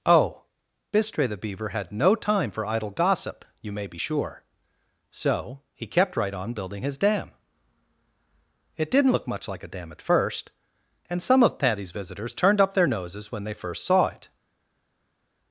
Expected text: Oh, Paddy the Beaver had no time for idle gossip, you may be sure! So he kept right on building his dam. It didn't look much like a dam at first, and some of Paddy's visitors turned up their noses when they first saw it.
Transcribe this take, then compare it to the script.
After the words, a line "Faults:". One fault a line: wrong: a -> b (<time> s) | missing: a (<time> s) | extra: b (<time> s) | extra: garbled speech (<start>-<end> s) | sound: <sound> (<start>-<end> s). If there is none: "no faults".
Oh, Bistre the Beaver had no time for idle gossip, you may be sure! So he kept right on building his dam. It didn't look much like a dam at first, and some of Paddy's visitors turned up their noses when they first saw it.
Faults:
wrong: Paddy -> Bistre (0.9 s)